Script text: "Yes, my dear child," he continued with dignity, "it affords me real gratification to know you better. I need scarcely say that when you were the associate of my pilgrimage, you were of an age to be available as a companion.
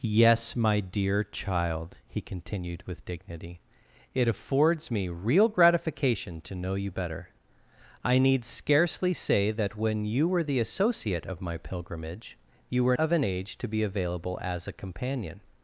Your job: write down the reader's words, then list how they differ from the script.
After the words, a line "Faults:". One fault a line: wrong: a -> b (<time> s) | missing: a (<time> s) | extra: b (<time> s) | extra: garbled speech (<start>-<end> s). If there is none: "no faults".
"Yes, my dear child," he continued with dignity, "it affords me real gratification to know you better. I need scarcely say that when you were the associate of my pilgrimage, you were of an age to be available as a companion.
Faults:
no faults